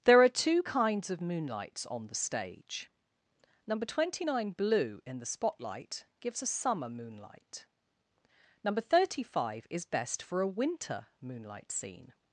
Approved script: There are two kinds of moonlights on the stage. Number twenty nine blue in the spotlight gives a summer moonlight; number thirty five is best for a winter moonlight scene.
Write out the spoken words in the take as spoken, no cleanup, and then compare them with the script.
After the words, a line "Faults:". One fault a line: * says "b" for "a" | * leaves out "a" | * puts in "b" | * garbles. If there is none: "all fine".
There are two kinds of moonlights on the stage. Number twenty nine blue in the spotlight gives a summer moonlight; number thirty five is best for a winter moonlight scene.
Faults:
all fine